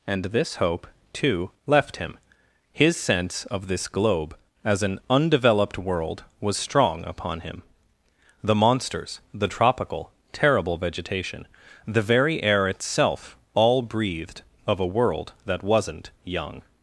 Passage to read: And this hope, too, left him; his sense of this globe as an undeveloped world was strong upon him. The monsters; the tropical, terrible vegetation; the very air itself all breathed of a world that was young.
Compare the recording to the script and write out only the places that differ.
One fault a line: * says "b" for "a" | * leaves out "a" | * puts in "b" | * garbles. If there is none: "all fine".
* says "wasn't" for "was"